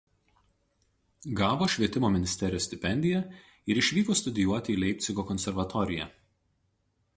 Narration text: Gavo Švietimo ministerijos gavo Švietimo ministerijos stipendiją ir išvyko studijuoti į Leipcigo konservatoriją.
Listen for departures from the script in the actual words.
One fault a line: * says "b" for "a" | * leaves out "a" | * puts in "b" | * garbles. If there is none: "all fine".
* leaves out "gavo Švietimo ministerijos"